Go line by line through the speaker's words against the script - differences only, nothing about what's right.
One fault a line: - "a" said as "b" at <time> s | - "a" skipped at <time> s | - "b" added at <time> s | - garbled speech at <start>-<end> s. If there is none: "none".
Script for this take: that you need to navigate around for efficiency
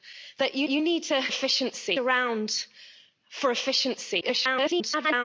- "you" added at 0.7 s
- "navigate" said as "efficiency" at 1.3 s
- garbled speech at 4.2-5.2 s